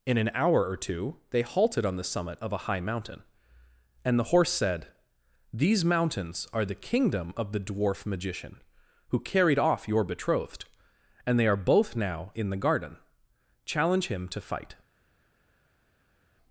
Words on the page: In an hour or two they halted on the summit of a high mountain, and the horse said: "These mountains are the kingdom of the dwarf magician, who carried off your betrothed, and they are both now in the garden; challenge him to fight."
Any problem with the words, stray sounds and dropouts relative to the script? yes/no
no